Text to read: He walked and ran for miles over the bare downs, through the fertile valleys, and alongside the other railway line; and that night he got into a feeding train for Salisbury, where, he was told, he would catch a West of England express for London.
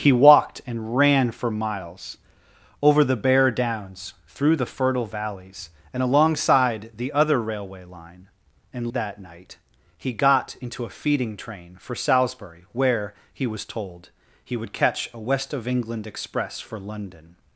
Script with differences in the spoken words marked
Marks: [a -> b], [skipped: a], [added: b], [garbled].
He walked and ran for miles over the bare downs, through the fertile valleys, and alongside the other railway line; and that night he got into a feeding train for Salisbury, where, he was told, he would catch a West of England express for London.